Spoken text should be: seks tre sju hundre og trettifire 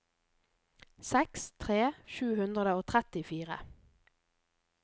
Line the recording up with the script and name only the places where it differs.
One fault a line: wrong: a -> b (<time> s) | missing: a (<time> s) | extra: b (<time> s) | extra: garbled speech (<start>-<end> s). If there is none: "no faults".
no faults